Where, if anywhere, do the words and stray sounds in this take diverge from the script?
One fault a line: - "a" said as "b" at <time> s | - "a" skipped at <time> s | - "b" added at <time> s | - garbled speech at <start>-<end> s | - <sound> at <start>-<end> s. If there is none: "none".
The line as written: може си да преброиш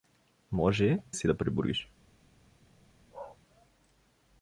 - bark at 3.1-3.4 s